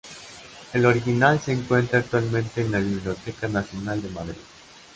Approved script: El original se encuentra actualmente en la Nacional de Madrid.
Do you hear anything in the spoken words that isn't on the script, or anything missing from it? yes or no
yes